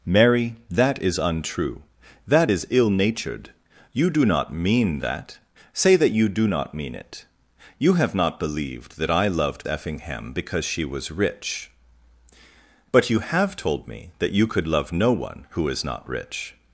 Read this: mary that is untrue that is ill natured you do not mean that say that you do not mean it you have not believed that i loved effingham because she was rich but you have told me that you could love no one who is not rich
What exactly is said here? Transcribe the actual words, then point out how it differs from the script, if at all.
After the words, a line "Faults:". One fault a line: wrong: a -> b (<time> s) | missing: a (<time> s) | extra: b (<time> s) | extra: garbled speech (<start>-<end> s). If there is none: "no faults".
mary that is untrue that is ill natured you do not mean that say that you do not mean it you have not believed that i loved effingham because she was rich but you have told me that you could love no one who is not rich
Faults:
no faults